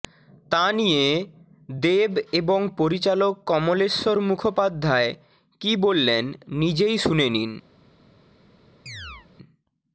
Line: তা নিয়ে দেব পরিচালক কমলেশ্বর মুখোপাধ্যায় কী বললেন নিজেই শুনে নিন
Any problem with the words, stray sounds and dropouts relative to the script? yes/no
yes